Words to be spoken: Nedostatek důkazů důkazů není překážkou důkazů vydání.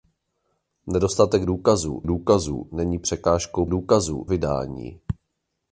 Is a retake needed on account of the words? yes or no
no